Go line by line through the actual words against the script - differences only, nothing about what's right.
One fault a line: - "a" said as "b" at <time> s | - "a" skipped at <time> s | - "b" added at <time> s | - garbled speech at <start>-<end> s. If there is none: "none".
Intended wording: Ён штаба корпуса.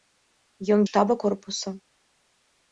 none